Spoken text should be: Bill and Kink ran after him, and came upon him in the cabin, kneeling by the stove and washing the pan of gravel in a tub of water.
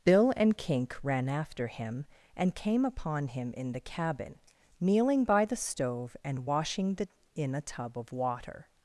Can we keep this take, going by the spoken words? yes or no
no